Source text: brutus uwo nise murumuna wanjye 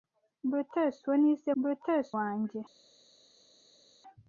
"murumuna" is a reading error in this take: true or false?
true